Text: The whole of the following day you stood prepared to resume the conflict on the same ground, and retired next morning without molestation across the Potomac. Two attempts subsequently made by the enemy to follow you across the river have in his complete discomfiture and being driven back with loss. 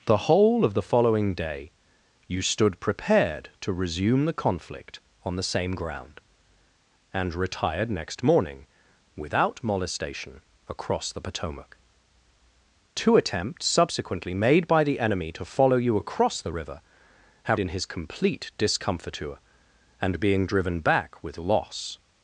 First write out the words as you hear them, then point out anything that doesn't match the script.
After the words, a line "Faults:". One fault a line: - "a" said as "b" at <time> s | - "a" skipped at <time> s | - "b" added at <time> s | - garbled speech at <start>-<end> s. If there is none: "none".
The whole of the following day you stood prepared to resume the conflict on the same ground, and retired next morning without molestation across the Potomac. Two attempts subsequently made by the enemy to follow you across the river have in his complete discomfiture and being driven back with loss.
Faults:
none